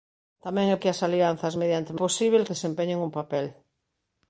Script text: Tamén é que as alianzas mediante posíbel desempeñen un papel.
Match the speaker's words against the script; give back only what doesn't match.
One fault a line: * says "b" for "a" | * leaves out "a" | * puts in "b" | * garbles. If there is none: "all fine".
all fine